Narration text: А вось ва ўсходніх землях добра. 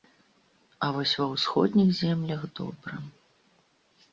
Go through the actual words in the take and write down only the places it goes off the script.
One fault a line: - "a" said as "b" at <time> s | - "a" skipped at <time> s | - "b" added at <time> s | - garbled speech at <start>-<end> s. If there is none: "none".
none